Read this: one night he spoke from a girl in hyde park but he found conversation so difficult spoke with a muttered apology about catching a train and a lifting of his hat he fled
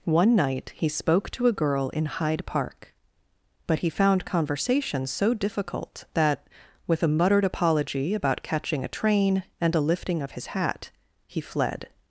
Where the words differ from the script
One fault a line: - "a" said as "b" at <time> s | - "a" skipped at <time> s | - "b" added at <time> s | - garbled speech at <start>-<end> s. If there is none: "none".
- "from" said as "to" at 1.3 s
- "spoke" said as "that" at 6.2 s